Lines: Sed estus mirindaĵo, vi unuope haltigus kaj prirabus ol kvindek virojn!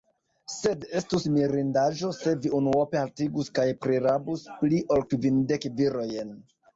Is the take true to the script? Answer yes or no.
no